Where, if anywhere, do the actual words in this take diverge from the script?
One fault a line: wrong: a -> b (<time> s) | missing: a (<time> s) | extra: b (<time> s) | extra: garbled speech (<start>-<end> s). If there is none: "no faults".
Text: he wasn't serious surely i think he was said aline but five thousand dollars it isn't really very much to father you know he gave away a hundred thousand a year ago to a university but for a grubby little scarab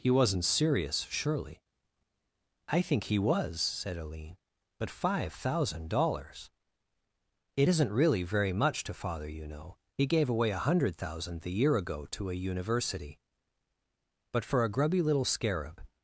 wrong: a -> the (11.4 s)